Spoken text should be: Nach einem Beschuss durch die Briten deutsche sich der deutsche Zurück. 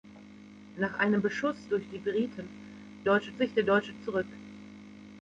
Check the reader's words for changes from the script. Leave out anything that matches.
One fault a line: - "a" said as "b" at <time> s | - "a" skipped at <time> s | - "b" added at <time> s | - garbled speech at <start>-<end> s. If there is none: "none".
none